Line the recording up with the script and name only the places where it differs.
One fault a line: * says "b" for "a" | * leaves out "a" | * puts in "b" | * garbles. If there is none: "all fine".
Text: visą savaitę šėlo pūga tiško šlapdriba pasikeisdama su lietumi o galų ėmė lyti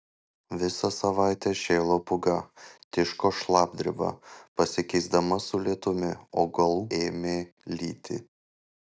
all fine